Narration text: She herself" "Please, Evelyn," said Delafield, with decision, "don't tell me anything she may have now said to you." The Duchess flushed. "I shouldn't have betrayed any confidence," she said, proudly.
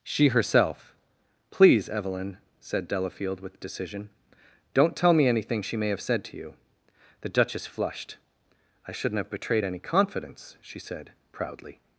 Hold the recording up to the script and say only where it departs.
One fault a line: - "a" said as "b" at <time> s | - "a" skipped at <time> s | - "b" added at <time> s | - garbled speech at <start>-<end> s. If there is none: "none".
- "now" skipped at 6.0 s